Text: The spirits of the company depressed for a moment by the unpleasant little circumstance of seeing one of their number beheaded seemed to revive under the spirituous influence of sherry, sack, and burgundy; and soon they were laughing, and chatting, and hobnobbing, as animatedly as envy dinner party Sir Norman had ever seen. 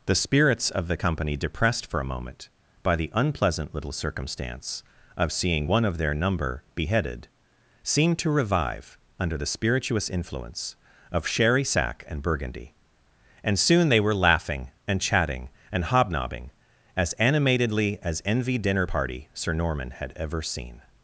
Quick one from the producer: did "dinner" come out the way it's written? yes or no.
yes